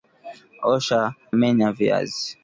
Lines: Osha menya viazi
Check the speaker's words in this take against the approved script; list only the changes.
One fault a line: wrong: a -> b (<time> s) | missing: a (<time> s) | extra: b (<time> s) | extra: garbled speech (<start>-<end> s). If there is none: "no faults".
no faults